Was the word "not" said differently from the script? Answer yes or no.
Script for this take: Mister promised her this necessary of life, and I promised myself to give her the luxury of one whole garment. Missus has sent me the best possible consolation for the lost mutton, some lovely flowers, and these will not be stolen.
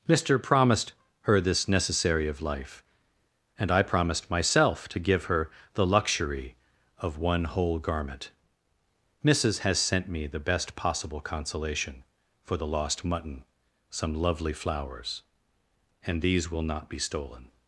no